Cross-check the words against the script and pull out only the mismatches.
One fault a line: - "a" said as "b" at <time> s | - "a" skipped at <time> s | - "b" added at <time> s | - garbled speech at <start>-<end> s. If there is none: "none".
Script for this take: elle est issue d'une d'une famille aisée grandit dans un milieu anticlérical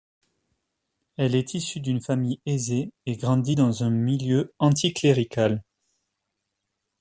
- "d'une" skipped at 2.0 s
- "et" added at 3.0 s